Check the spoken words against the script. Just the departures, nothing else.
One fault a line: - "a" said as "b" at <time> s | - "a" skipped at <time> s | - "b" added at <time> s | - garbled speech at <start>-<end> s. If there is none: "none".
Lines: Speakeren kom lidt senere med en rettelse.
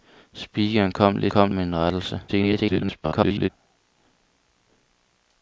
- "senere" said as "kom" at 1.3 s
- garbled speech at 2.3-3.5 s